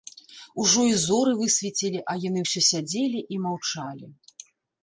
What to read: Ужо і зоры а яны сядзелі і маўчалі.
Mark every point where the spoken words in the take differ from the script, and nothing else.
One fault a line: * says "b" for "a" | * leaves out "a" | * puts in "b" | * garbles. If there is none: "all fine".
* puts in "высвецілі"
* puts in "ўсё"